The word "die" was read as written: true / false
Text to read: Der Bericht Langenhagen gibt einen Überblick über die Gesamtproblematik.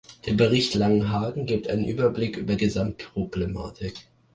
false